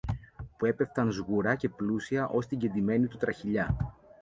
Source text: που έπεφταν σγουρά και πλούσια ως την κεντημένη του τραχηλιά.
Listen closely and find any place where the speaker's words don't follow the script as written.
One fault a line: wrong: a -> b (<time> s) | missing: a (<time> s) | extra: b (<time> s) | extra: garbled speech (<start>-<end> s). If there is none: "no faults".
no faults